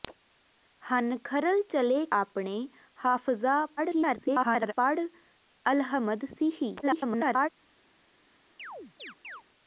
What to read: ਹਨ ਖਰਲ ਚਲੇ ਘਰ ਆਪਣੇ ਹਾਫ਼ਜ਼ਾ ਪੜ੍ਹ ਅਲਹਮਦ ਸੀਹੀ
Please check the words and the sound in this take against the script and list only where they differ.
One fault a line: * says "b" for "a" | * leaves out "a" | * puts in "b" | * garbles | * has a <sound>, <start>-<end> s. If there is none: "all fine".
* leaves out "ਘਰ"
* garbles
* garbles
* has a chirp, 8.6-9.4 s